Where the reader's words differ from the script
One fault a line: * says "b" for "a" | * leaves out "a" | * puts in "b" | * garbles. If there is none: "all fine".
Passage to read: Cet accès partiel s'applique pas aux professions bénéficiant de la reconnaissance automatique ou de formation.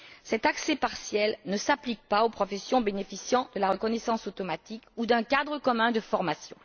* puts in "ne"
* puts in "d'un cadre commun"